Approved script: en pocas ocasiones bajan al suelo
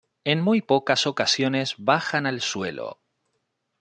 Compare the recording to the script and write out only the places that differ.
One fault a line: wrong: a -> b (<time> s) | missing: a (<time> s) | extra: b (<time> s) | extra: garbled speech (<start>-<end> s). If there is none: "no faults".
extra: muy (0.4 s)